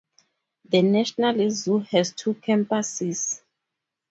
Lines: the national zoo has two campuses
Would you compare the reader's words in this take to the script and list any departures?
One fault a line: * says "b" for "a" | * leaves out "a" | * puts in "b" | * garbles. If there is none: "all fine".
all fine